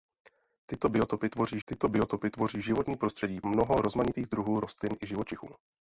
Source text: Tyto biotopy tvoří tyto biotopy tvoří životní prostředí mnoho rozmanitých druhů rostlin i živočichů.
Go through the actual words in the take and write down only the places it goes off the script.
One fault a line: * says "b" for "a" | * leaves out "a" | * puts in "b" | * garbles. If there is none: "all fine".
all fine